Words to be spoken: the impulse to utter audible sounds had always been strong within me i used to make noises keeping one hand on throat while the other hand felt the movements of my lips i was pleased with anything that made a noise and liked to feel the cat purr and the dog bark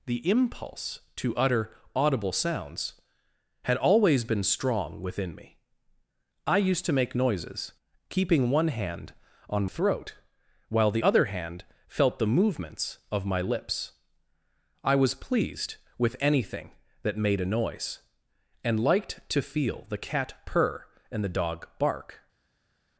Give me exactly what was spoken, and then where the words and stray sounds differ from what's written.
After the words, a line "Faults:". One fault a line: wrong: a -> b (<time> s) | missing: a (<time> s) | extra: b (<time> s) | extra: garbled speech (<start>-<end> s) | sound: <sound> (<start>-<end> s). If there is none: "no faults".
the impulse to utter audible sounds had always been strong within me i used to make noises keeping one hand on throat while the other hand felt the movements of my lips i was pleased with anything that made a noise and liked to feel the cat purr and the dog bark
Faults:
no faults